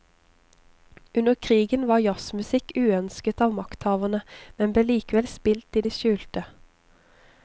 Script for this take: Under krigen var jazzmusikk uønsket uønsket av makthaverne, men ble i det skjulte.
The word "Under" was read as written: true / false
true